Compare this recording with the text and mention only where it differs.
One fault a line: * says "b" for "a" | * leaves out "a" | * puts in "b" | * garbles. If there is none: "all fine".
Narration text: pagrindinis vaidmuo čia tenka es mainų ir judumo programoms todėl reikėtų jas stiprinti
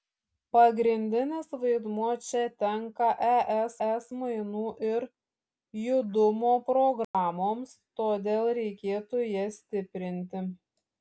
* puts in "es"